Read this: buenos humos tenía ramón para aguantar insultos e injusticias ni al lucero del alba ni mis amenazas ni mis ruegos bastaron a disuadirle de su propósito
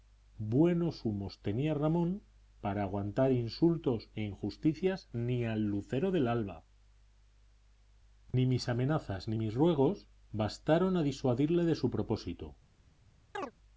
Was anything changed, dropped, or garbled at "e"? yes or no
no